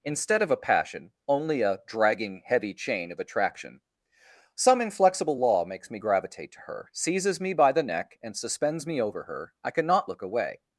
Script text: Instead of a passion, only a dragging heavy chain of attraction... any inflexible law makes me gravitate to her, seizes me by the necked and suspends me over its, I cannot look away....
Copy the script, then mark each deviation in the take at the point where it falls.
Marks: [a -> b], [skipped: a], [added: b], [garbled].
Instead of a passion, only a dragging heavy chain of attraction... [any -> some] inflexible law makes me gravitate to her, seizes me by the [necked -> neck] and suspends me over [its, -> her] I cannot look away....